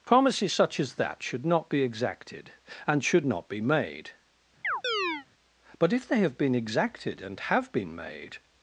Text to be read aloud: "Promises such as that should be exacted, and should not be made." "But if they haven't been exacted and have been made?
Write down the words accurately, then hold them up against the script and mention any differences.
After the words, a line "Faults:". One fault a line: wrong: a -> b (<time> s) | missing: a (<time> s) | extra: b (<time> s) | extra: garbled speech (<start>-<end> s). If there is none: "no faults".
"Promises such as that should not be exacted, and should not be made." "But if they have been exacted and have been made?
Faults:
extra: not (1.5 s)
wrong: haven't -> have (6.2 s)